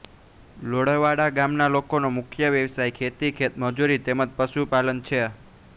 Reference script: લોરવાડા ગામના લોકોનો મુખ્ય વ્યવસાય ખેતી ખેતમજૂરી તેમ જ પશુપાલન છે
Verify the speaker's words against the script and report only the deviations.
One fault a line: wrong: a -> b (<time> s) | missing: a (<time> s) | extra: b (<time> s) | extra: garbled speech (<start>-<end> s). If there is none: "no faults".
no faults